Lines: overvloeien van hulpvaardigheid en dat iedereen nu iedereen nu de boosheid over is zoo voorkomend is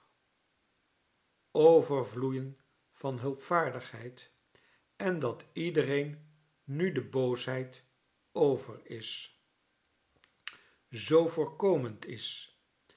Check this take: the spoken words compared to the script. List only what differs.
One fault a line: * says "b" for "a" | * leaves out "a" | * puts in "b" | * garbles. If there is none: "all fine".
* leaves out "iedereen nu"